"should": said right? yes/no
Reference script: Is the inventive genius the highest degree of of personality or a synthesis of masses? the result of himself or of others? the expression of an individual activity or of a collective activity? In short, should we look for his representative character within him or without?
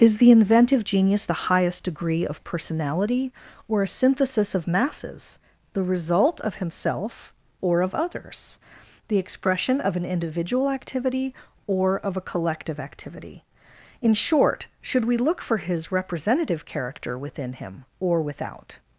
yes